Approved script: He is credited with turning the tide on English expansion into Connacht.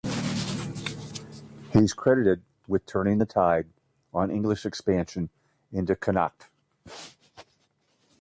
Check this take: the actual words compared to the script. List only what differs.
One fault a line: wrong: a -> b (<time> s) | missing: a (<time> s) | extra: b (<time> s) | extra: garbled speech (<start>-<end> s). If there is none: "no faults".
no faults